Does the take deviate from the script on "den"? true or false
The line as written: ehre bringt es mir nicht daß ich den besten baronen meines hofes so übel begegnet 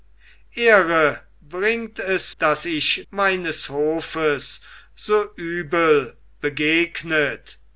true